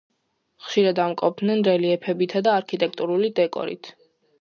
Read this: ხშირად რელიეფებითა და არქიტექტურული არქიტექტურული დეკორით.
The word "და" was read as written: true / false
true